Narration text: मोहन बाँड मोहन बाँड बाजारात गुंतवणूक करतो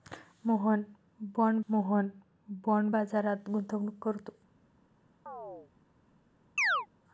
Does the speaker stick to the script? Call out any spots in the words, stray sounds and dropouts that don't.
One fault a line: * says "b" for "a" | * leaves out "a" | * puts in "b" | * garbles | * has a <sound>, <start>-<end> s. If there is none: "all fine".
* has a chirp, 5.3-5.7 s
* has a chirp, 6.6-6.9 s